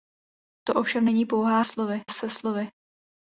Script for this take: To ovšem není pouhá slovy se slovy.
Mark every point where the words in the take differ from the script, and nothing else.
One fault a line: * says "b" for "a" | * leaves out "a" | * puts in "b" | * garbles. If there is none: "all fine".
all fine